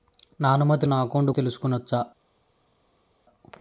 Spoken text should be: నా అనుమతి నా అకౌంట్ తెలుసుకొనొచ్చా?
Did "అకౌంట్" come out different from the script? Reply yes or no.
no